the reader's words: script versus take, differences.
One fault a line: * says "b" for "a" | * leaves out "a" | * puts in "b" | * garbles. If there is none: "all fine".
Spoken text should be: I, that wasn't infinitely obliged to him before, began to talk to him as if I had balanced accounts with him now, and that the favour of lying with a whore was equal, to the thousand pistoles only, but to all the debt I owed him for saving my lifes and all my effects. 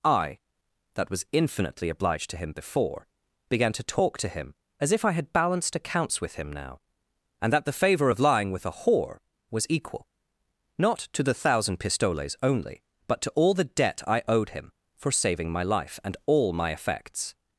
* says "was" for "wasn't"
* puts in "not"
* says "life" for "lifes"